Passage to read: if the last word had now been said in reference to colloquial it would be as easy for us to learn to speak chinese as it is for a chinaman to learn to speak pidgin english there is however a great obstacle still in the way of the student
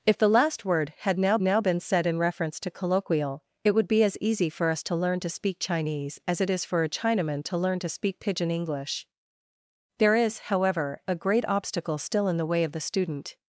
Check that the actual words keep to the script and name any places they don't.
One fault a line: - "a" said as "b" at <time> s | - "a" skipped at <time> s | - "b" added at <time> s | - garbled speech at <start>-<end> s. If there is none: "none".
- "now" added at 1.4 s